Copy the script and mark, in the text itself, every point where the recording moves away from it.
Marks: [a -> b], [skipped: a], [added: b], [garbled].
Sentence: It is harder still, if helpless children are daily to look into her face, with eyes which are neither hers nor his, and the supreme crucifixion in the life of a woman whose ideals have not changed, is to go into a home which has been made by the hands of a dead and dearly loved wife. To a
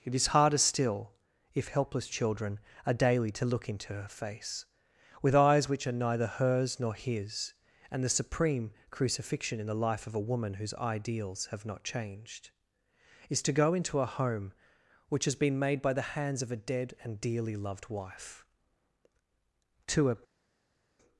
It is harder still, if helpless children are daily to look into her face, with eyes which are neither hers nor his, and the supreme crucifixion in the life of a woman whose ideals have not changed, is to go into a home which has been made by the hands of a dead and dearly loved wife. To a